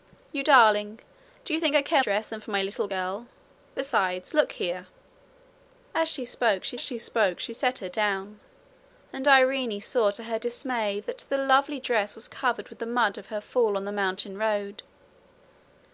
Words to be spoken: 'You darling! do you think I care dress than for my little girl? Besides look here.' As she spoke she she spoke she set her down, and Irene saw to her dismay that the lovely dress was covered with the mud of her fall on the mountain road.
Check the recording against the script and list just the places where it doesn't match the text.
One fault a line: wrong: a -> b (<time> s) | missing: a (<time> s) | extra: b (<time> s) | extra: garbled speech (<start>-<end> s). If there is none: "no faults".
no faults